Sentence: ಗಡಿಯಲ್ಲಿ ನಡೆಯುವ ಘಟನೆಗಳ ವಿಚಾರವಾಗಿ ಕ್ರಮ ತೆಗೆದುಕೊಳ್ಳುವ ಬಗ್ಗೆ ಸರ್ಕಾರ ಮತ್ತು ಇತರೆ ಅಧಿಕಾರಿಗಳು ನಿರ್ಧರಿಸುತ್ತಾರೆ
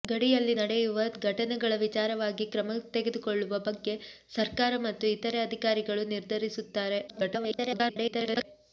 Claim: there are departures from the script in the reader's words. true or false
true